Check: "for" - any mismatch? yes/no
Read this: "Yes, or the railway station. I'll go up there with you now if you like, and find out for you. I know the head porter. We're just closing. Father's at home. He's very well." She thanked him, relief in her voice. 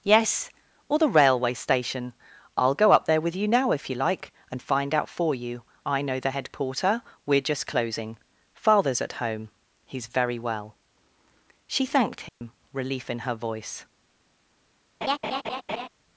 no